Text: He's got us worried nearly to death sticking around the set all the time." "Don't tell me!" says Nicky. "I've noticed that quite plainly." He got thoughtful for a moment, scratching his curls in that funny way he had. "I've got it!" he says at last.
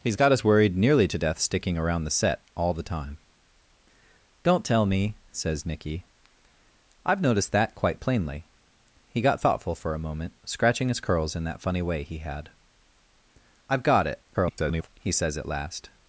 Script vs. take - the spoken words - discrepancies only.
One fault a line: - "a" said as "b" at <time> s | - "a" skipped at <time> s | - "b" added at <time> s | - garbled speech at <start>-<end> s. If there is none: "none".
- garbled speech at 14.3-14.9 s